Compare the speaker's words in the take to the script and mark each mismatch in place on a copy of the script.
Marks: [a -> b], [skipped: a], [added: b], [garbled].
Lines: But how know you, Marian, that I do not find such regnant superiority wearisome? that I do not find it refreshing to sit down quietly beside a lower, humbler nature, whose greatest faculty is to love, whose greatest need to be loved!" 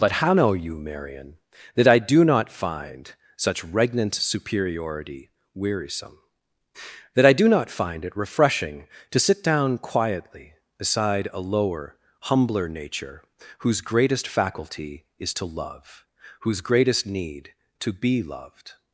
But how know you, Marian, that I do not find such regnant superiority wearisome? that I do not find it refreshing to sit down quietly beside a lower, humbler nature, whose greatest faculty is to love, whose greatest need to be loved!"